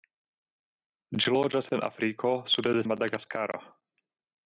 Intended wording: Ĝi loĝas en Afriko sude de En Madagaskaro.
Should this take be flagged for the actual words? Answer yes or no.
no